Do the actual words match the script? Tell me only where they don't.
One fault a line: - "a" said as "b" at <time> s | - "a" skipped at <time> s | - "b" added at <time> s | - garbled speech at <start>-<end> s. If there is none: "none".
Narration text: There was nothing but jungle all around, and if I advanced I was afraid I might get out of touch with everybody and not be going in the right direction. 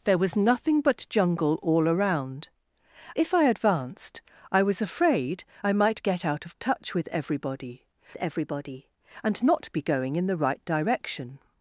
- "and" skipped at 2.5 s
- "everybody" added at 8.2 s